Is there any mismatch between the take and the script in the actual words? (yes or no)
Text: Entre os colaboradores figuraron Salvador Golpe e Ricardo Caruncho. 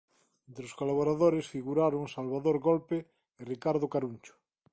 no